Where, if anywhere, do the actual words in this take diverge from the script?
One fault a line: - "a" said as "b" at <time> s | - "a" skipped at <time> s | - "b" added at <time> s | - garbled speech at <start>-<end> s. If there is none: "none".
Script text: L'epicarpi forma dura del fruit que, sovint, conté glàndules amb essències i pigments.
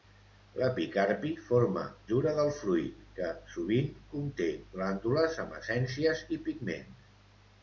none